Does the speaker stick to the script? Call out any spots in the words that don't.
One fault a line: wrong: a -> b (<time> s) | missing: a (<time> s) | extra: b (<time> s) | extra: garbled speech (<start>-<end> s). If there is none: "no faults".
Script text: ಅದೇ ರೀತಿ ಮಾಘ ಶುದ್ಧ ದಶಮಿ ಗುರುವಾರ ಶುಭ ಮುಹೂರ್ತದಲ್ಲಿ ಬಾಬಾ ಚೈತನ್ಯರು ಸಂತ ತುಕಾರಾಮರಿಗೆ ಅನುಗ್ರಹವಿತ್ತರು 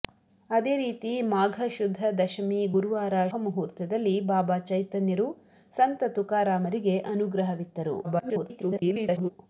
missing: ಶುಭ (3.1 s)
extra: garbled speech (8.0-9.3 s)